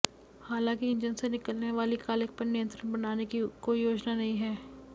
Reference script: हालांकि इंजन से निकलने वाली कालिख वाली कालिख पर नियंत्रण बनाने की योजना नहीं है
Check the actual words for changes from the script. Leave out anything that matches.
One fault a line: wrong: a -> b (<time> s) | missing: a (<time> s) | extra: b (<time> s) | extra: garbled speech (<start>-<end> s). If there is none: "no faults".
missing: वाली कालिख (2.3 s)
extra: कोई (3.6 s)